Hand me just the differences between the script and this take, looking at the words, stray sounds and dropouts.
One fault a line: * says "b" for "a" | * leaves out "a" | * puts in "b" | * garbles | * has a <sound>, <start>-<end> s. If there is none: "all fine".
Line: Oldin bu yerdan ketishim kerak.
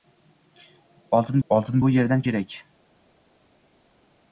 * puts in "oldin"
* leaves out "ketishim"